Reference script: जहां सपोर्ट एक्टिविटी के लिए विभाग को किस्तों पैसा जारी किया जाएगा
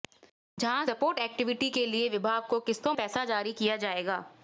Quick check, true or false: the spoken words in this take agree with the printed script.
true